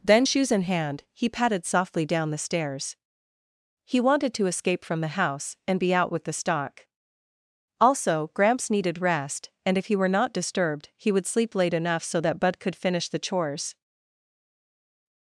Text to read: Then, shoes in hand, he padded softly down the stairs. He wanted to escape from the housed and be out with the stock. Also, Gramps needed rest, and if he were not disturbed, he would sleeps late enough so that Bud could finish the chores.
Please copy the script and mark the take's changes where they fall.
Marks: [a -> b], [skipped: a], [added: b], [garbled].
Then, shoes in hand, he padded softly down the stairs. He wanted to escape from the [housed -> house] and be out with the stock. Also, Gramps needed rest, and if he were not disturbed, he would [sleeps -> sleep] late enough so that Bud could finish the chores.